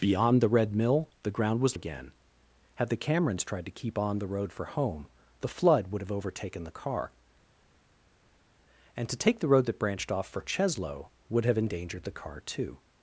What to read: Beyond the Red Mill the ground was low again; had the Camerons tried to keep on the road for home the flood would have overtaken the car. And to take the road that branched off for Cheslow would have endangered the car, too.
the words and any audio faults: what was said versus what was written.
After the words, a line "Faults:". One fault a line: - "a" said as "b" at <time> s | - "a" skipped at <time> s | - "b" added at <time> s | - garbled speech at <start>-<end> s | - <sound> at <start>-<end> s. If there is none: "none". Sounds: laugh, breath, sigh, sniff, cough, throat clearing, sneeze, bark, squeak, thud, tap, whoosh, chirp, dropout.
Beyond the Red Mill the ground was again; had the Camerons tried to keep on the road for home the flood would have overtaken the car. And to take the road that branched off for Cheslow would have endangered the car, too.
Faults:
- "low" skipped at 1.8 s